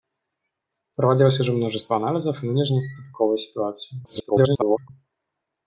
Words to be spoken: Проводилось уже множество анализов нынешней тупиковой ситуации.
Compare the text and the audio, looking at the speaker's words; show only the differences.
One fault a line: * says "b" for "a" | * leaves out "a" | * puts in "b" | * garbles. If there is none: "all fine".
* garbles